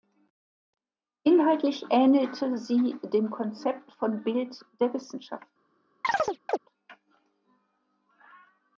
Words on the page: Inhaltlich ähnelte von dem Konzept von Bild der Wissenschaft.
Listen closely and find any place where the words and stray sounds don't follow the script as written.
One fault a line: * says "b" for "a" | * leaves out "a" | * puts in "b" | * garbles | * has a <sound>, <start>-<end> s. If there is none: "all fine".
* says "sie" for "von"
* has a chirp, 6.0-6.6 s